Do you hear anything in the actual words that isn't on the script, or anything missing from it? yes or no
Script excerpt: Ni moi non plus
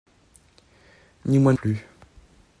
yes